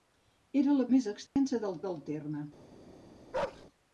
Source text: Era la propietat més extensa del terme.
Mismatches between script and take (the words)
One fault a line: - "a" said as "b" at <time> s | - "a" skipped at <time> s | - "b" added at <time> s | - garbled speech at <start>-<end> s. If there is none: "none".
- "propietat" skipped at 0.8 s
- "del" added at 1.9 s